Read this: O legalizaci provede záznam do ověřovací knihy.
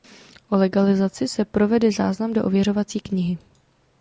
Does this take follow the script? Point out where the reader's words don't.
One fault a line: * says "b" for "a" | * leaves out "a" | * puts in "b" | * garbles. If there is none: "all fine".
* puts in "se"